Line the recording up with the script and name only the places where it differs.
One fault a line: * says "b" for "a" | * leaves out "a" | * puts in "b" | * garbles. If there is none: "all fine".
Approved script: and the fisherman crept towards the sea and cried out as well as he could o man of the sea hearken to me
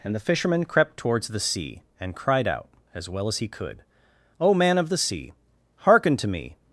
all fine